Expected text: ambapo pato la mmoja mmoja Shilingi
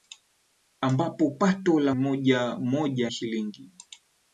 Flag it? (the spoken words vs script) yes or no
no